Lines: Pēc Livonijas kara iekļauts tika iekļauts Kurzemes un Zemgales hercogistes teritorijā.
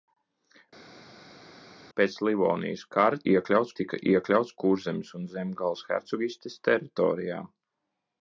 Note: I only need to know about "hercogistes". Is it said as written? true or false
true